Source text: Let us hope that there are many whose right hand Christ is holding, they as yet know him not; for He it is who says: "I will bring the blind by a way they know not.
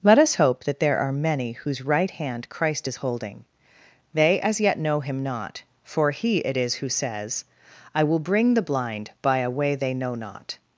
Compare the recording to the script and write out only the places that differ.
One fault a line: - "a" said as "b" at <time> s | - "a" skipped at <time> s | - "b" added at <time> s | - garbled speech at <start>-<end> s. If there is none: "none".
none